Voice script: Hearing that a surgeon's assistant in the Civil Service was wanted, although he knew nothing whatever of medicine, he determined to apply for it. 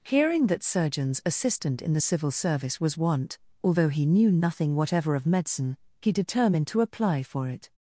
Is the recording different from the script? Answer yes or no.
yes